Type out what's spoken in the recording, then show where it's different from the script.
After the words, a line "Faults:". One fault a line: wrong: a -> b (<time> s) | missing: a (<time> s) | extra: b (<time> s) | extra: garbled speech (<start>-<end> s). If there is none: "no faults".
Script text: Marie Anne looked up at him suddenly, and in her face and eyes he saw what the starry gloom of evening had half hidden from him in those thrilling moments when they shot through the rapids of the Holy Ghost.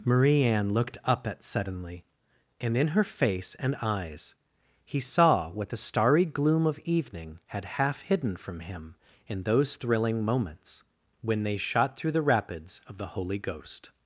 Marie Anne looked up at suddenly, and in her face and eyes he saw what the starry gloom of evening had half hidden from him in those thrilling moments when they shot through the rapids of the Holy Ghost.
Faults:
missing: him (1.4 s)